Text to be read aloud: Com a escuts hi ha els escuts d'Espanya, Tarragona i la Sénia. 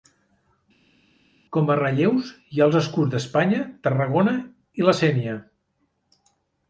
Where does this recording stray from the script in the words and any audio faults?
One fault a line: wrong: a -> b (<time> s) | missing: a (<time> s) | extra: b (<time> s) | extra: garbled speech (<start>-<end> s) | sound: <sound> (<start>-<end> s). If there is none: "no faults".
wrong: escuts -> relleus (1.8 s)